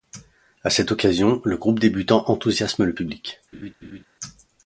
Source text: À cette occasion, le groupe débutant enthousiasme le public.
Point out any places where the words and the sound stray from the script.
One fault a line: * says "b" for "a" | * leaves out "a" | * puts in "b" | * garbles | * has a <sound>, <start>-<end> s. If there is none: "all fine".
* has a laugh, 3.5-4.0 s